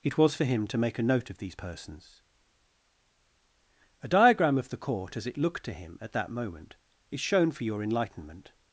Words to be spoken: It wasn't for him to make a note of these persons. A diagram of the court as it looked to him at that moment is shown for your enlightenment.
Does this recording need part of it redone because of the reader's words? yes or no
yes